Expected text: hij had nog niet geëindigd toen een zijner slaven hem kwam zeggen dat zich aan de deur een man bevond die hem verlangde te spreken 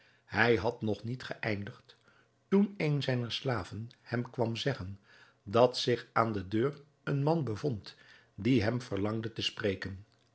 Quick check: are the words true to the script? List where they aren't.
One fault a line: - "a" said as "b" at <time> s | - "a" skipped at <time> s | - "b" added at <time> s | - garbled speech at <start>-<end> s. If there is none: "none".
none